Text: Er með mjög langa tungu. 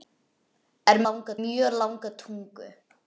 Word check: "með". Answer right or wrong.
wrong